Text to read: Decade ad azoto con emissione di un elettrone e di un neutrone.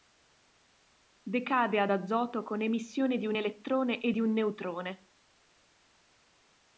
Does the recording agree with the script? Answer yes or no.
yes